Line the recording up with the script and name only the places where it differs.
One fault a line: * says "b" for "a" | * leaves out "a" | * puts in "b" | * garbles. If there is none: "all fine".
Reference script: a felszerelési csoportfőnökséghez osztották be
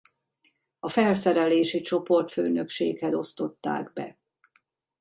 all fine